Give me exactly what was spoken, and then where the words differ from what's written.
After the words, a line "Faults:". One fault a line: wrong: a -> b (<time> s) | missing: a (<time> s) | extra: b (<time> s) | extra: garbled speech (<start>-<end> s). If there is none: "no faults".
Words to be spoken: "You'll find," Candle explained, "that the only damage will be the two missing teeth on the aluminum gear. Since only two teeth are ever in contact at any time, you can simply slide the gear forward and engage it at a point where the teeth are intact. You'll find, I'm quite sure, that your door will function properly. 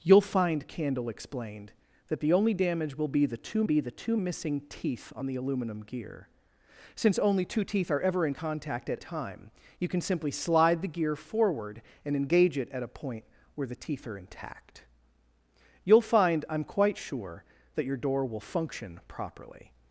"You'll find," Candle explained, "that the only damage will be the two be the two missing teeth on the aluminum gear. Since only two teeth are ever in contact at time, you can simply slide the gear forward and engage it at a point where the teeth are intact. You'll find, I'm quite sure, that your door will function properly.
Faults:
extra: be the two (3.6 s)
missing: any (9.0 s)